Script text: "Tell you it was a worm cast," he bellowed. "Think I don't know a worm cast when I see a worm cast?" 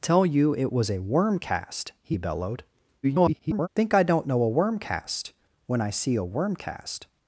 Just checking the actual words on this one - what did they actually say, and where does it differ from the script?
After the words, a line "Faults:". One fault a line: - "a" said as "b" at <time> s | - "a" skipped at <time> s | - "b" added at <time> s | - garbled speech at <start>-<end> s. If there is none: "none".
"Tell you it was a worm cast," he bellowed. [garbled] "Think I don't know a worm cast when I see a worm cast?"
Faults:
- garbled speech at 3.0-3.7 s